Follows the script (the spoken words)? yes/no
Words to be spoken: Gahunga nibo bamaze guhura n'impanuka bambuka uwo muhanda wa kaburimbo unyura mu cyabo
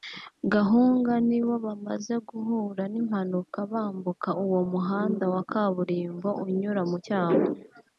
yes